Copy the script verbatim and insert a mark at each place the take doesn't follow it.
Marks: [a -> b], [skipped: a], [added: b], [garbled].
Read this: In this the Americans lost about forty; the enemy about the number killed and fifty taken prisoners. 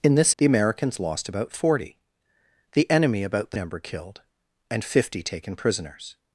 In this the Americans lost about forty; the enemy about the number killed and fifty taken prisoners.